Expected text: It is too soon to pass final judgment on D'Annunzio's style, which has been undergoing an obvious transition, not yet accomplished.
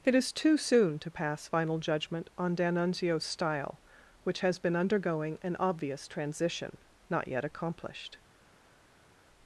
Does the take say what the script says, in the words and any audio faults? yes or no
yes